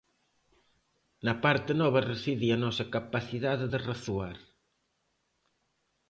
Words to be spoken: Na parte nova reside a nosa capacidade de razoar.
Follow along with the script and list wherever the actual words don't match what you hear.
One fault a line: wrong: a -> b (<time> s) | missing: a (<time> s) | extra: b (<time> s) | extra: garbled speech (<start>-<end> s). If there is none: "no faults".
no faults